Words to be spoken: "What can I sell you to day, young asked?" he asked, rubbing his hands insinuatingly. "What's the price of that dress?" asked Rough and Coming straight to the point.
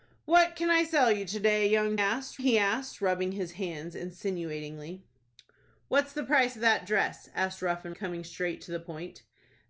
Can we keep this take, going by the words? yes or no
yes